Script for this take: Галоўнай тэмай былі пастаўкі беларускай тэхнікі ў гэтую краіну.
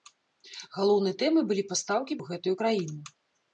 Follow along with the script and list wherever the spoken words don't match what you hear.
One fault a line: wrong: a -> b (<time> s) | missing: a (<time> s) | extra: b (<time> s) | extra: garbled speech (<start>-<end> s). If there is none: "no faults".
missing: беларускай тэхнікі (2.2 s)